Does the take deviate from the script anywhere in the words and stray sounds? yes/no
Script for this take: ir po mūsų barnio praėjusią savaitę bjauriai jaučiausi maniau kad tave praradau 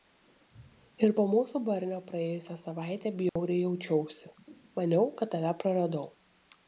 yes